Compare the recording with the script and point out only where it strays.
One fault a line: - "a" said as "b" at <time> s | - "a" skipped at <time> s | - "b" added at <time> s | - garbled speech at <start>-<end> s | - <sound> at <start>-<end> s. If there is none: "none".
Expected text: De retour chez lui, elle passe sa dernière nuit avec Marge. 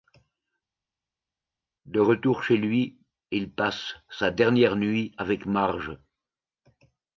- "elle" said as "il" at 3.3 s